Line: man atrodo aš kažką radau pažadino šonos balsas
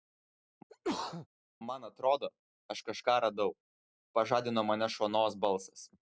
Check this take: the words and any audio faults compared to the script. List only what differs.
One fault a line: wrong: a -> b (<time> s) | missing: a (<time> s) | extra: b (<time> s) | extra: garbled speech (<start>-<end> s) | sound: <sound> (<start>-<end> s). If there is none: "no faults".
sound: sneeze (0.7-1.3 s)
extra: mane (4.7 s)